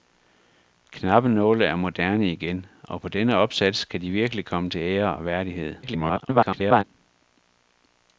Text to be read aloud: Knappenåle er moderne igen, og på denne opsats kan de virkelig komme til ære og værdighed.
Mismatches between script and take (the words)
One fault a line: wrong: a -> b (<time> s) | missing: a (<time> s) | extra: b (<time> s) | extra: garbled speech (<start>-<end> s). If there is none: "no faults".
extra: garbled speech (5.8-6.8 s)